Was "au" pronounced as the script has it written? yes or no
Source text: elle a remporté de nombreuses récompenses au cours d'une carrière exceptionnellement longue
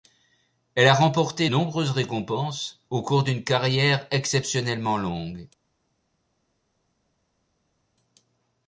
yes